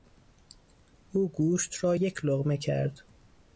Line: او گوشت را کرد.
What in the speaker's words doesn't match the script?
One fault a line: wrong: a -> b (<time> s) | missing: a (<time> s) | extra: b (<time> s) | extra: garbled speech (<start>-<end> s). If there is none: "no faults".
extra: یک لقمه (1.9 s)